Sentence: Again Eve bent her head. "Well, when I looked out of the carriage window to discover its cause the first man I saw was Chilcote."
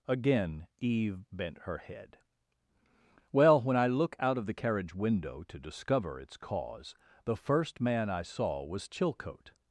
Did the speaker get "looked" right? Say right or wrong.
wrong